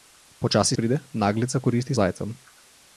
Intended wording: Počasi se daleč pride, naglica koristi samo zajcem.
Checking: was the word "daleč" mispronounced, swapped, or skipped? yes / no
yes